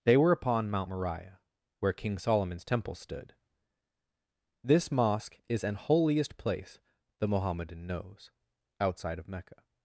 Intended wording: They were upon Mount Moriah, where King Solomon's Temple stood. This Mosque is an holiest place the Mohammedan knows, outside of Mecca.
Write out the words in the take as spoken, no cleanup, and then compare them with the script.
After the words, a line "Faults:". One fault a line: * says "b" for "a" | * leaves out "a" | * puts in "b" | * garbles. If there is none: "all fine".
They were upon Mount Moriah, where King Solomon's Temple stood. This Mosque is an holiest place the Mohammedan knows, outside of Mecca.
Faults:
all fine